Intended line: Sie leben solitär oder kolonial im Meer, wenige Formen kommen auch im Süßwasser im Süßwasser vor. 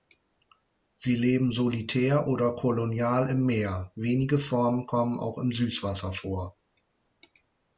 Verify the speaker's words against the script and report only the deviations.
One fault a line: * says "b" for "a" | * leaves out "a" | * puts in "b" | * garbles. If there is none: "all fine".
* leaves out "im Süßwasser"